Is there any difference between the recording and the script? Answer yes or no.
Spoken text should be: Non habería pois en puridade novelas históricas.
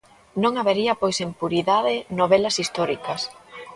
no